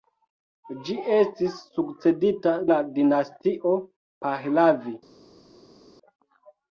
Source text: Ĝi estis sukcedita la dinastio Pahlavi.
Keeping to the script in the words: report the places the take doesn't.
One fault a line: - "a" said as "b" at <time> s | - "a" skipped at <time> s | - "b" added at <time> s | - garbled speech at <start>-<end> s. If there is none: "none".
none